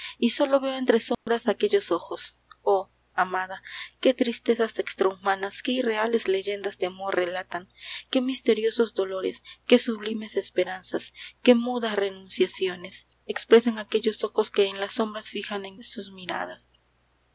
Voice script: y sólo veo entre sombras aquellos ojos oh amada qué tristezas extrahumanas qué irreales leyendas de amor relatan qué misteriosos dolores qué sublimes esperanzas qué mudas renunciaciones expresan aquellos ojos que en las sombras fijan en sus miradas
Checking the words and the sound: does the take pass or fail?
fail